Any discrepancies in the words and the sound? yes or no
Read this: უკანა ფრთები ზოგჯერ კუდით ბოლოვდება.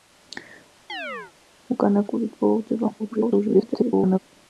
yes